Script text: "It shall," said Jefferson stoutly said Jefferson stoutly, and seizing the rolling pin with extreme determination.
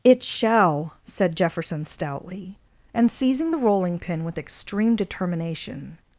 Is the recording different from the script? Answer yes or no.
yes